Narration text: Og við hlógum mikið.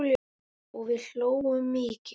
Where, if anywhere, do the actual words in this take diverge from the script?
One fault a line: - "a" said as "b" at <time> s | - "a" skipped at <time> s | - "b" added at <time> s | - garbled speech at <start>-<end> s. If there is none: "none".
none